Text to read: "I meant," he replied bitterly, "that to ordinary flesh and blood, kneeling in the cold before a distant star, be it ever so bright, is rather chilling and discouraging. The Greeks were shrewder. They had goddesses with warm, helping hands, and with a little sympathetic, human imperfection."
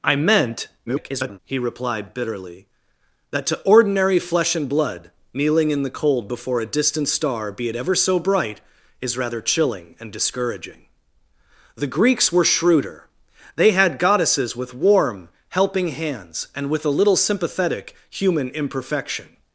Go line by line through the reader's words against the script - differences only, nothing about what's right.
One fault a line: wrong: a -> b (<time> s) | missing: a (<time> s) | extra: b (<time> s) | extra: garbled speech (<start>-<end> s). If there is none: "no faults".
extra: garbled speech (0.9-1.4 s)